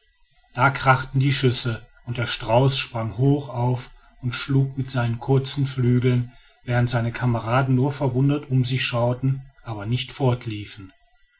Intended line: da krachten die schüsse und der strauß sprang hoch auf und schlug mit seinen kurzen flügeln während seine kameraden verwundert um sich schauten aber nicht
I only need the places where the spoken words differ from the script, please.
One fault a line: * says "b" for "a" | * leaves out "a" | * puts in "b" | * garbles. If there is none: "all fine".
* puts in "nur"